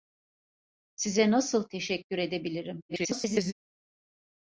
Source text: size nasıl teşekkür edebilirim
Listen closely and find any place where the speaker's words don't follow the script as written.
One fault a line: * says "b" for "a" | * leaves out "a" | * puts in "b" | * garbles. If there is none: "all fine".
* garbles